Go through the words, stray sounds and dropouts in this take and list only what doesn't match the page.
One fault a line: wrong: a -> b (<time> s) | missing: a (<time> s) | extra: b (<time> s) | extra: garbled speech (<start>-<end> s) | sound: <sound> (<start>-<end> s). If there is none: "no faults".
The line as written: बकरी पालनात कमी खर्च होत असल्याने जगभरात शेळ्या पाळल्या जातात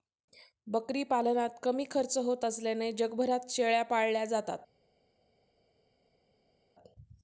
no faults